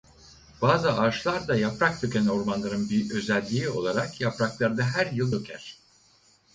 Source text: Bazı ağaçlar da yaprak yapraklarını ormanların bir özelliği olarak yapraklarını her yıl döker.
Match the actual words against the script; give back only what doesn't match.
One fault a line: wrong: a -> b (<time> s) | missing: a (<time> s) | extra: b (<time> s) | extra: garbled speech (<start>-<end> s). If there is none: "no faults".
wrong: yapraklarını -> döken (2.0 s)